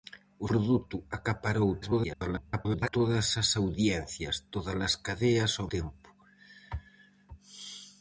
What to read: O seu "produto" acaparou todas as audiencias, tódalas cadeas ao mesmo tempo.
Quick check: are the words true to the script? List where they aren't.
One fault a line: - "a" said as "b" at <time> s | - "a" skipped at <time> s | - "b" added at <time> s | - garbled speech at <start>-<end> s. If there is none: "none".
- "seu" skipped at 0.5 s
- garbled speech at 1.8-2.9 s
- "mesmo" skipped at 5.7 s